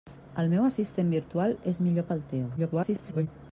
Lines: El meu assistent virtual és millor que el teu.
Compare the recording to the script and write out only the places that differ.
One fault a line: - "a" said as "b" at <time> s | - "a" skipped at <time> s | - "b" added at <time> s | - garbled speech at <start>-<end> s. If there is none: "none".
- garbled speech at 2.6-3.3 s